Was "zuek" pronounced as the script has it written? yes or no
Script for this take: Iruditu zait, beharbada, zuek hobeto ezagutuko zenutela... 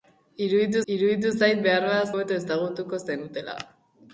no